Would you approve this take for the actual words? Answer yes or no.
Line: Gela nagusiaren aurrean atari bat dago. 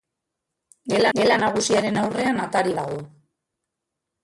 no